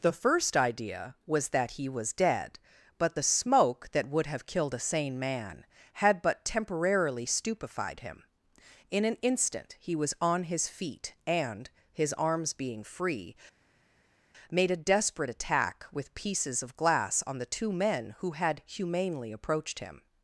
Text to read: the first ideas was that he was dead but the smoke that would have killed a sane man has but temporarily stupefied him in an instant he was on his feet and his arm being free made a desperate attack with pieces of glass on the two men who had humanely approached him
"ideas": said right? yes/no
no